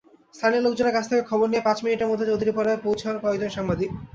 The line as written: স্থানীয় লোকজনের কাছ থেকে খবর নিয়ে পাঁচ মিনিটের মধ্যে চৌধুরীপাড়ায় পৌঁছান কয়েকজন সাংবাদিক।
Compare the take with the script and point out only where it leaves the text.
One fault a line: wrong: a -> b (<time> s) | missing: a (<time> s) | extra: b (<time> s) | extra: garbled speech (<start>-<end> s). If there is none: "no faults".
no faults